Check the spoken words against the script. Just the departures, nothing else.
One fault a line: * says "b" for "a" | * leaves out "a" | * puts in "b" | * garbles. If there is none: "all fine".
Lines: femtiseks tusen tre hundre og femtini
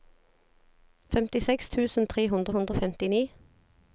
* puts in "hundre"